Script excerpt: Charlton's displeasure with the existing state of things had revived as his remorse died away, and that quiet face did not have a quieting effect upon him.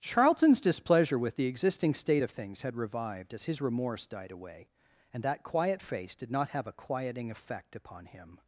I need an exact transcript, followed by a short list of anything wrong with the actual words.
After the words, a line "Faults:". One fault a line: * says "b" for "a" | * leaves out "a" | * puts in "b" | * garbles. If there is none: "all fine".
Charlton's displeasure with the existing state of things had revived as his remorse died away, and that quiet face did not have a quieting effect upon him.
Faults:
all fine